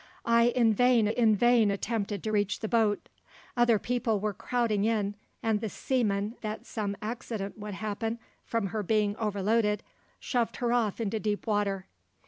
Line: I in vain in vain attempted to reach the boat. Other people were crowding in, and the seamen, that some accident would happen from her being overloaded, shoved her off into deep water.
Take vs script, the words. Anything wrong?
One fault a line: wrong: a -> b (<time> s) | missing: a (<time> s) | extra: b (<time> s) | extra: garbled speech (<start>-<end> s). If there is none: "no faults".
no faults